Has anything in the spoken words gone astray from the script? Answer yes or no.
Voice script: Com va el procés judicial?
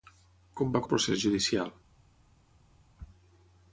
no